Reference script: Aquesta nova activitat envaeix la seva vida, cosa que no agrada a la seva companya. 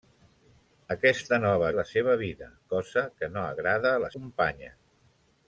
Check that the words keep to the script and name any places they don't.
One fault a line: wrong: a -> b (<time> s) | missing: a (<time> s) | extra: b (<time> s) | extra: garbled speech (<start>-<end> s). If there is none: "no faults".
missing: activitat envaeix (1.7 s)
missing: seva (4.1 s)